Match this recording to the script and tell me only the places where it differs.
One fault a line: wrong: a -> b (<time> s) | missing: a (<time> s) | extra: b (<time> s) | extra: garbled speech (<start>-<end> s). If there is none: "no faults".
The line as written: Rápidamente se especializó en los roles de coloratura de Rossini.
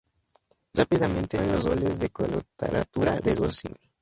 missing: se especializó (1.4 s)